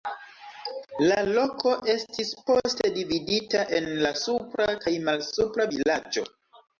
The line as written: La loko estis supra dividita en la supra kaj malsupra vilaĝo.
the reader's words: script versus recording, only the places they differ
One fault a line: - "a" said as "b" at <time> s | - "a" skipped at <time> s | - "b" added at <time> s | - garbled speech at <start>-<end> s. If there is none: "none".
- "supra" said as "poste" at 2.5 s